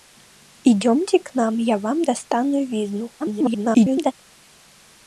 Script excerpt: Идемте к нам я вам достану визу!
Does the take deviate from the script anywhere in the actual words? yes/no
yes